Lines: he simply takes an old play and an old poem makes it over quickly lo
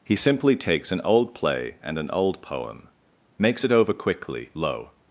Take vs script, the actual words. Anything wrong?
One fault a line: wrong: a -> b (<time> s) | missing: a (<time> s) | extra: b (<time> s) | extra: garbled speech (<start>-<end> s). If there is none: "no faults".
no faults